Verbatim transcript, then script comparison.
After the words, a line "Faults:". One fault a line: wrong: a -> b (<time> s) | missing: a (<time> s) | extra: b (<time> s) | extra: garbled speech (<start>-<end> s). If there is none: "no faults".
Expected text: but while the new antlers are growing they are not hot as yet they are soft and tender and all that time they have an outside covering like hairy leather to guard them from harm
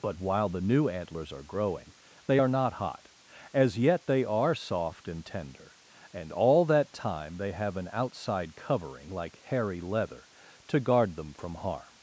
but while the new antlers are growing they are not hot as yet they are soft and tender and all that time they have an outside covering like hairy leather to guard them from harm
Faults:
no faults